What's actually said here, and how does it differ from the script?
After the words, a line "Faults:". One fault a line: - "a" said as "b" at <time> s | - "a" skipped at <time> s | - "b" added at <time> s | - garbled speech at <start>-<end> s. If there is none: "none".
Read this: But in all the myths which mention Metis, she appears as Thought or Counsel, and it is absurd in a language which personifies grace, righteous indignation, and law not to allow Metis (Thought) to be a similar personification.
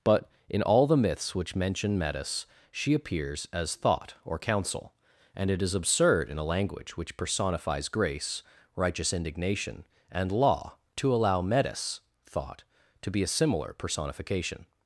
But in all the myths which mention Metis, she appears as Thought or Counsel, and it is absurd in a language which personifies grace, righteous indignation, and law to allow Metis (Thought) to be a similar personification.
Faults:
- "not" skipped at 10.8 s